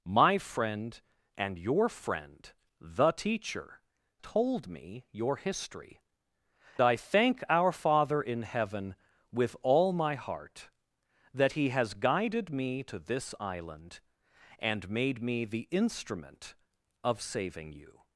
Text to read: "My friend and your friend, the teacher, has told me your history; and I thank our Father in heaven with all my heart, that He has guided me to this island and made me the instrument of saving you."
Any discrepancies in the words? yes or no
yes